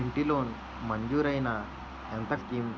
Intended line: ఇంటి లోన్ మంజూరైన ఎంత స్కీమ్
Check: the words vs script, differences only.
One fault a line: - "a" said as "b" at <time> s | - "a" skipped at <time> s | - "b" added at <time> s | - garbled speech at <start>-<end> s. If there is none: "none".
none